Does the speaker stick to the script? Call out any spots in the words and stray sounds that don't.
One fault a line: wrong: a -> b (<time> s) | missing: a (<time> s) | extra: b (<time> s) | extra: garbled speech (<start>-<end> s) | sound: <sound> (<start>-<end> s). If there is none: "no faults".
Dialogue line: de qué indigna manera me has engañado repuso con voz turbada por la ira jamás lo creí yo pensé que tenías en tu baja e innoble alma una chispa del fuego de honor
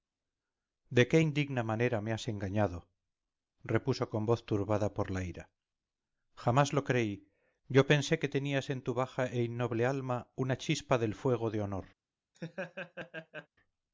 sound: laugh (12.3-13.5 s)